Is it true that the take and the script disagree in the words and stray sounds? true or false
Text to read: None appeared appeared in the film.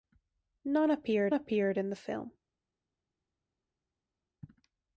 false